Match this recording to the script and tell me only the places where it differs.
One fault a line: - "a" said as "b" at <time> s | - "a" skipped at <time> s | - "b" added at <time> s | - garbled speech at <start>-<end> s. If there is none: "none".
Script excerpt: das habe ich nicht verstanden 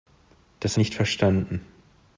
- "habe ich" skipped at 0.8 s